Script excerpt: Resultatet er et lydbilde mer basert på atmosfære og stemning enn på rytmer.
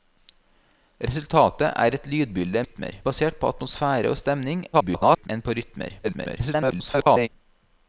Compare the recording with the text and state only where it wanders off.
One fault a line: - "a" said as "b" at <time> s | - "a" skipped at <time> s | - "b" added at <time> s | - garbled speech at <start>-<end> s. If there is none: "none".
- "mer" said as "rytmer" at 2.6 s
- garbled speech at 4.7-5.3 s
- garbled speech at 6.0-7.3 s